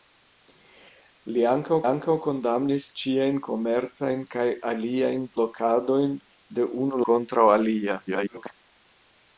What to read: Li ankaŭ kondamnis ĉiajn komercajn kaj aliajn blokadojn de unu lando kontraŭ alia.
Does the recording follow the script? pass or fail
fail